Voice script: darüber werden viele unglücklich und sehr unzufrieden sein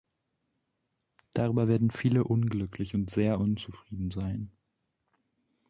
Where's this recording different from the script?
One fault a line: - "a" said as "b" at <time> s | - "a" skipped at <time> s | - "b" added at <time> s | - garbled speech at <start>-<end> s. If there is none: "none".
none